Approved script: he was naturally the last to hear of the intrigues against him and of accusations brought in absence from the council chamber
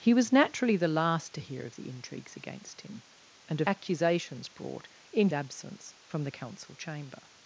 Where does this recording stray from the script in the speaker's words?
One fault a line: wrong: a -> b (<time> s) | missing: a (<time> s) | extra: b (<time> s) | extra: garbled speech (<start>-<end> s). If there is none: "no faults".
no faults